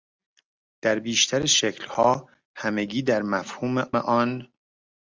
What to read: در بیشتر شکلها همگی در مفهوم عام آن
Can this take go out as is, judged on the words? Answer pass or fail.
fail